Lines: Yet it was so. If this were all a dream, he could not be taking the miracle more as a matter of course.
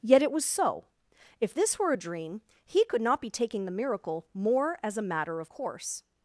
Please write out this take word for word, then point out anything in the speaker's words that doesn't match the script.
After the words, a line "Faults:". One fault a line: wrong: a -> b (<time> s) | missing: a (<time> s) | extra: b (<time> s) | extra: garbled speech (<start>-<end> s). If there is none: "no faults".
Yet it was so. If this were a dream, he could not be taking the miracle more as a matter of course.
Faults:
missing: all (1.9 s)